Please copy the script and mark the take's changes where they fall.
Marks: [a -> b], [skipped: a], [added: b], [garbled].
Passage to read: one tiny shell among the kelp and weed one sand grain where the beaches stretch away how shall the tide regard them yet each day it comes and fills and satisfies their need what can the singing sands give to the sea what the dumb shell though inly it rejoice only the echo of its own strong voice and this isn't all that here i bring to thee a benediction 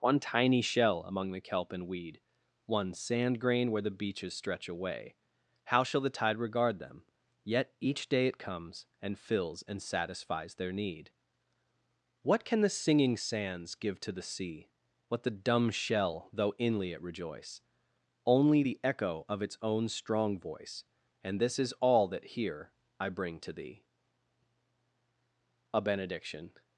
one tiny shell among the kelp and weed one sand grain where the beaches stretch away how shall the tide regard them yet each day it comes and fills and satisfies their need what can the singing sands give to the sea what the dumb shell though inly it rejoice only the echo of its own strong voice and this [isn't -> is] all that here i bring to thee a benediction